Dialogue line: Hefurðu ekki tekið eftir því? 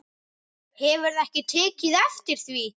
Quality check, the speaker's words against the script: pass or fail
pass